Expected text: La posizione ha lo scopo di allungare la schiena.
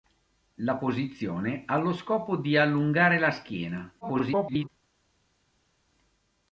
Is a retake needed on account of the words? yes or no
yes